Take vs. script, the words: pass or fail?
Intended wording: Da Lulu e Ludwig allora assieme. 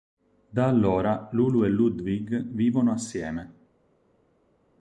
fail